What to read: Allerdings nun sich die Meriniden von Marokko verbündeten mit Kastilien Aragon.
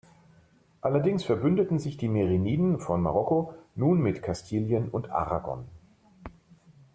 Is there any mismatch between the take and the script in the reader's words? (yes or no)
yes